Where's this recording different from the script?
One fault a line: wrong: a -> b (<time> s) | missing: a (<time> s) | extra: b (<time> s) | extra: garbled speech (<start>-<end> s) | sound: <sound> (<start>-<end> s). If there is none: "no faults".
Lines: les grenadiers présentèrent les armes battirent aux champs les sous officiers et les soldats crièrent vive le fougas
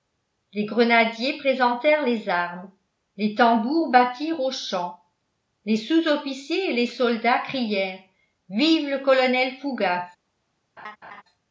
extra: les tambours (3.2 s)
extra: colonel (9.0 s)
sound: laugh (10.8-11.2 s)